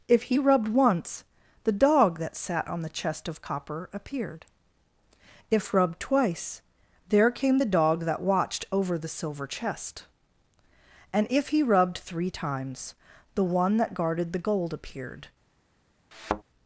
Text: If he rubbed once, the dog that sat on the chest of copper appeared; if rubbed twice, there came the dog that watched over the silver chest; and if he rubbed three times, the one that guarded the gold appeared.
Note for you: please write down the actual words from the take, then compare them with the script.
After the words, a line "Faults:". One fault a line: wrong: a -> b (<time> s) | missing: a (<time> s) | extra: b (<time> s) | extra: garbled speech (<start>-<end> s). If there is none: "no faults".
If he rubbed once, the dog that sat on the chest of copper appeared; if rubbed twice, there came the dog that watched over the silver chest; and if he rubbed three times, the one that guarded the gold appeared.
Faults:
no faults